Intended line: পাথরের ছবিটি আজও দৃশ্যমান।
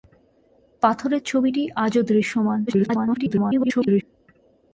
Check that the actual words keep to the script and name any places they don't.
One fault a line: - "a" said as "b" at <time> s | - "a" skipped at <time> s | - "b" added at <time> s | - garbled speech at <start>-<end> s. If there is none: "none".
- garbled speech at 2.7-4.0 s